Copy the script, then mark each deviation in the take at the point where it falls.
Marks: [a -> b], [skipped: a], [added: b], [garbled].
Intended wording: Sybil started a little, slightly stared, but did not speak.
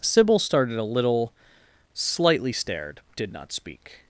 Sybil started a little, slightly stared, [skipped: but] did not speak.